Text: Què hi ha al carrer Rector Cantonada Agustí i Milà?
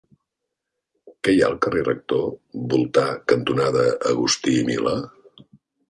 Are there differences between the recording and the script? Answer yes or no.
yes